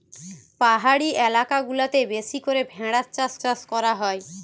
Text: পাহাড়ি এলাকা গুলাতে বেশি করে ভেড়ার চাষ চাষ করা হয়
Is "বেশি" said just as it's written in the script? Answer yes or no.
yes